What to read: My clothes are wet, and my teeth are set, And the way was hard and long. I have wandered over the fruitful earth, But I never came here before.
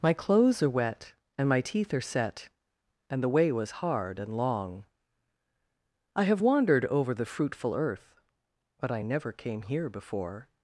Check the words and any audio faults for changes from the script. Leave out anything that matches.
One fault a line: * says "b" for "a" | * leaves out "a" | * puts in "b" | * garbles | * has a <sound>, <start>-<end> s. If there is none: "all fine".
all fine